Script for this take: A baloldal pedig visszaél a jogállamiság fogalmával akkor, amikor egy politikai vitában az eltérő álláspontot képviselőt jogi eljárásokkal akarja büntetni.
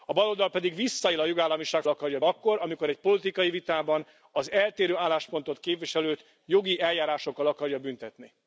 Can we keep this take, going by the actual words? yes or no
no